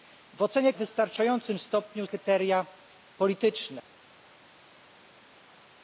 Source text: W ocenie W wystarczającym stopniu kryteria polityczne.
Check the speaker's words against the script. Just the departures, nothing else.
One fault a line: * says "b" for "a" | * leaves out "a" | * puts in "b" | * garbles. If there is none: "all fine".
all fine